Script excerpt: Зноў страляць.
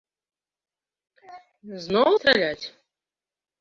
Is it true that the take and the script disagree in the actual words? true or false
false